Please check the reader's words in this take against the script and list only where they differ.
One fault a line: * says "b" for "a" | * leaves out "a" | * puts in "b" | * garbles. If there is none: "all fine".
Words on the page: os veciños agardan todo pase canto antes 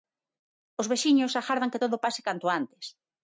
* puts in "que"